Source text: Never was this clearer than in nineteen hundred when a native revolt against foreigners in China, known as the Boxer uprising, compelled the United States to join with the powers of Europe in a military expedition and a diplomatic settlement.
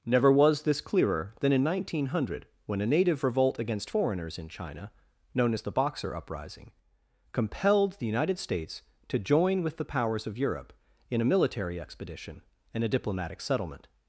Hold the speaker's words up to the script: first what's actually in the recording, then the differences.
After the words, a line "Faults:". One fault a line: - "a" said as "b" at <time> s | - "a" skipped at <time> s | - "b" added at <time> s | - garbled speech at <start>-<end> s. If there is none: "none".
Never was this clearer than in nineteen hundred when a native revolt against foreigners in China, known as the Boxer uprising, compelled the United States to join with the powers of Europe in a military expedition and a diplomatic settlement.
Faults:
none